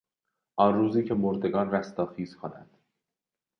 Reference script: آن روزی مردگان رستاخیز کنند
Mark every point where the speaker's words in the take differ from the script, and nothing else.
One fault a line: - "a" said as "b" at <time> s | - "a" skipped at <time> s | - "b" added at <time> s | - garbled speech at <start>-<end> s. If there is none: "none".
- "که" added at 1.0 s